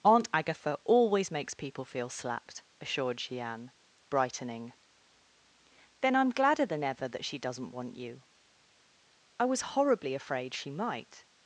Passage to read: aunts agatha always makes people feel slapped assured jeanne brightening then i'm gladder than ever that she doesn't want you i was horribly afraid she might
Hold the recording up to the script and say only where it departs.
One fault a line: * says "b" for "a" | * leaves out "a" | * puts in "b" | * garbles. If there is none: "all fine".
* says "aunt" for "aunts"